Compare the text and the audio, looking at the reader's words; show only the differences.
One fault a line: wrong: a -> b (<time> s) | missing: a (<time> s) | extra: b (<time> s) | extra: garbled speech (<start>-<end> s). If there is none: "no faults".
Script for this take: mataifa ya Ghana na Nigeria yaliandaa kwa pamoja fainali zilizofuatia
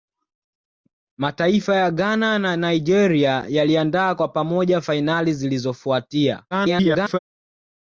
extra: garbled speech (6.5-7.2 s)